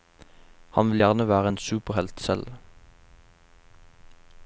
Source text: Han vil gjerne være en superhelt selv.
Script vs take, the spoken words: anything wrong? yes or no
no